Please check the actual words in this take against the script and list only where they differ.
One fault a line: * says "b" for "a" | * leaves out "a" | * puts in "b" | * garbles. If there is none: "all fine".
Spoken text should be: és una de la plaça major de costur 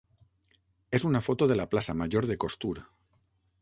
* puts in "foto"